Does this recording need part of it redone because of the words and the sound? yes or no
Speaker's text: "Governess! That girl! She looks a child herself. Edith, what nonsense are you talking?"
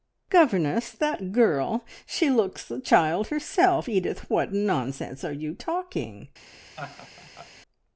yes